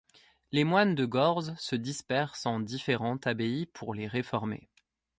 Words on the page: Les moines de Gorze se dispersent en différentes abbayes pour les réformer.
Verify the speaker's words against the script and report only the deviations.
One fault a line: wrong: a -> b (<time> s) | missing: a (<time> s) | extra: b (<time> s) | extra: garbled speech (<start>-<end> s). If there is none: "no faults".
no faults